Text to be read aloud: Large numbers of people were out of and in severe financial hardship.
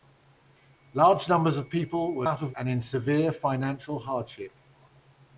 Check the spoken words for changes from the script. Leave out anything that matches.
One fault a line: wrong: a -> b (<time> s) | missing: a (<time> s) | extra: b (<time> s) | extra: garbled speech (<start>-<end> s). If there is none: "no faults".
no faults